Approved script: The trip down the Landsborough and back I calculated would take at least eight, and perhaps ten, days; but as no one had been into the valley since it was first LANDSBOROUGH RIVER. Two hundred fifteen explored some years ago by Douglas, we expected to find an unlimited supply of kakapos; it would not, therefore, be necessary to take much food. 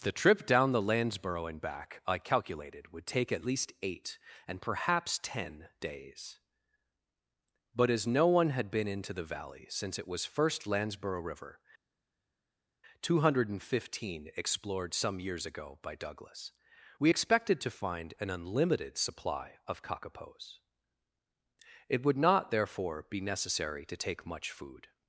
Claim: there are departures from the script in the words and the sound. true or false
false